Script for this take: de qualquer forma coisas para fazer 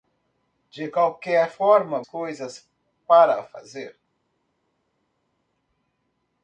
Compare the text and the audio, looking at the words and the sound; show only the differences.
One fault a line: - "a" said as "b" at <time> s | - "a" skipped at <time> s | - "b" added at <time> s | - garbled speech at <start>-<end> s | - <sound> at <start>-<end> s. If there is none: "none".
none